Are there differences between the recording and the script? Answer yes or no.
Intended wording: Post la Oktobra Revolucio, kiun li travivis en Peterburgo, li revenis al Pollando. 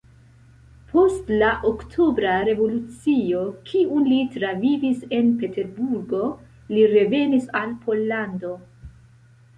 no